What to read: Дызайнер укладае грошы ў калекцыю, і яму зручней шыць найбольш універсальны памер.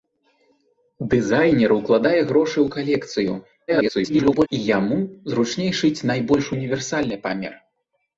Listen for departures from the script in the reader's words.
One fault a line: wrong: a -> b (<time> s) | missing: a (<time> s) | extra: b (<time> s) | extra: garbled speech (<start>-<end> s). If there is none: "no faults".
extra: garbled speech (3.7-4.5 s)